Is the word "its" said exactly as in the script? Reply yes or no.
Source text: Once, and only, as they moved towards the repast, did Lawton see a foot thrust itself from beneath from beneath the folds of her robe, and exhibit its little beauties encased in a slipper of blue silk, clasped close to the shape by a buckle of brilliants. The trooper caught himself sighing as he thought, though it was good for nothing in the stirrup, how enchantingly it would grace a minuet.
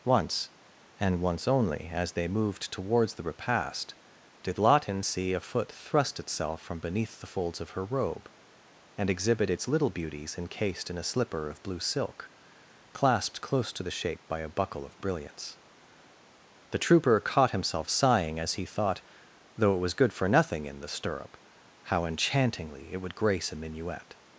yes